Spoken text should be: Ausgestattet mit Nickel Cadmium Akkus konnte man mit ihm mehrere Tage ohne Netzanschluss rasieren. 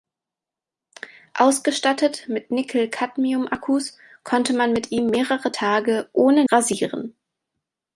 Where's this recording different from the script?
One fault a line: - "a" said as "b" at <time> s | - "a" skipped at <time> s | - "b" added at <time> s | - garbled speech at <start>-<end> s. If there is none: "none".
- "Netzanschluss" skipped at 6.4 s